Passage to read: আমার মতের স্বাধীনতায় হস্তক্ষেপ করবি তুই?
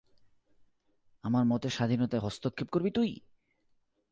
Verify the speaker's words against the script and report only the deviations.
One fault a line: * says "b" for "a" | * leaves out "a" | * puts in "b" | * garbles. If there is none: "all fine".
all fine